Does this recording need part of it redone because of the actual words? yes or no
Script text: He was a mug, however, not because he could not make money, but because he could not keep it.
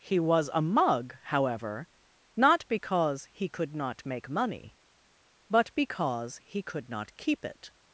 no